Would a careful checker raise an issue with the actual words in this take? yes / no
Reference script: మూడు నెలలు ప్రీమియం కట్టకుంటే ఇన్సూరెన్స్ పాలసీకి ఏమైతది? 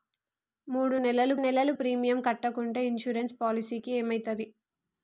yes